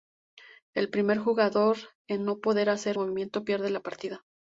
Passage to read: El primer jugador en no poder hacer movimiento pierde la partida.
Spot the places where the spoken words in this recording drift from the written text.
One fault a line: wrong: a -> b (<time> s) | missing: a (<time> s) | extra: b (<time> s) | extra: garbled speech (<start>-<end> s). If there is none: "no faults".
no faults